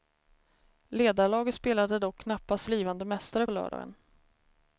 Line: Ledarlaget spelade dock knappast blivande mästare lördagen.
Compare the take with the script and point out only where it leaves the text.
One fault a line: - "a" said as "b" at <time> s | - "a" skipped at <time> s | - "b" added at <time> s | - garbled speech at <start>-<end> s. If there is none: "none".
none